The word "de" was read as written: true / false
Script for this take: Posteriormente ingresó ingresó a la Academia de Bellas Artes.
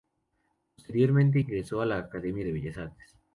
true